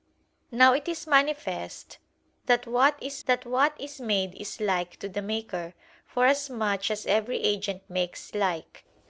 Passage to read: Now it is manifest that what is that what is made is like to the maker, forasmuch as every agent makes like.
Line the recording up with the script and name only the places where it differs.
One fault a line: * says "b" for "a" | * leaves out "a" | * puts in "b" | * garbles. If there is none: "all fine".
all fine